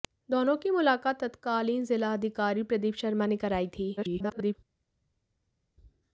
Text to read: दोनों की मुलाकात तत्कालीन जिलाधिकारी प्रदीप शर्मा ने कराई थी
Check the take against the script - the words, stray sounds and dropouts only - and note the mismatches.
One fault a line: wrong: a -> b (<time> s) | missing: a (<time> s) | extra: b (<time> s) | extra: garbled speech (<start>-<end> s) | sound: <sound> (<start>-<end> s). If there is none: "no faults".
extra: garbled speech (4.0-4.5 s)